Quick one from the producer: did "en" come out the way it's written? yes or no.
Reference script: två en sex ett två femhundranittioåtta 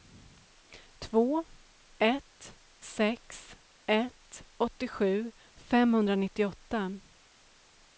no